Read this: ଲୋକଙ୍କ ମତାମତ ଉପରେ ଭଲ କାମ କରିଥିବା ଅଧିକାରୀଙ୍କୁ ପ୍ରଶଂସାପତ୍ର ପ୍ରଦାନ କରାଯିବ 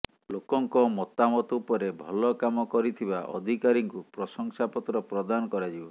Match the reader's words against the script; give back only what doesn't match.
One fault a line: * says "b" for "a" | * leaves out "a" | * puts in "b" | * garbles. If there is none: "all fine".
all fine